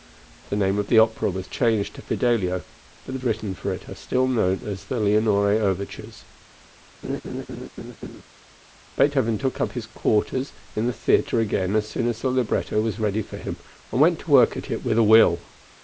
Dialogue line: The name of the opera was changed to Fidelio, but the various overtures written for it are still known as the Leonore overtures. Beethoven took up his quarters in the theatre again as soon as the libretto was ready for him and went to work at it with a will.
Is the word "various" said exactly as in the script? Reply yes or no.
no